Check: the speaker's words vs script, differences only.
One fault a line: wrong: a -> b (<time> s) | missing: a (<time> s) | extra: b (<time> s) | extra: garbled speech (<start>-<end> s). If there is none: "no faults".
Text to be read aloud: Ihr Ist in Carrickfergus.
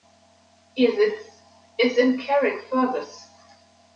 extra: Sitz (0.9 s)